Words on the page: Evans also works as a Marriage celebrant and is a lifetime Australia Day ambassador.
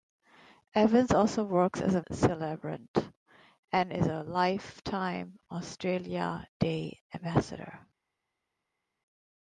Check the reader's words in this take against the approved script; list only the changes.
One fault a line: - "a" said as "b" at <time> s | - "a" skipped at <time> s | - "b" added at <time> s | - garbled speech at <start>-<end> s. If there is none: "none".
- "Marriage" skipped at 2.0 s